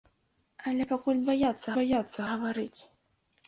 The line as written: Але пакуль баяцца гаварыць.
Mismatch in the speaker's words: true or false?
true